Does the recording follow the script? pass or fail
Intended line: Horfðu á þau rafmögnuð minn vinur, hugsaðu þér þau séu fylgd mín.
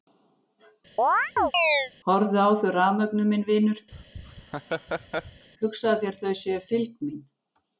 pass